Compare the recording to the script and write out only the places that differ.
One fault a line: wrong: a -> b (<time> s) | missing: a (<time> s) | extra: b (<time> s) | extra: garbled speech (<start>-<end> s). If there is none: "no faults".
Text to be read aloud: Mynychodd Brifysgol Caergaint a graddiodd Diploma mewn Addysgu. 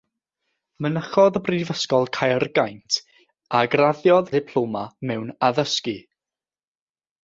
no faults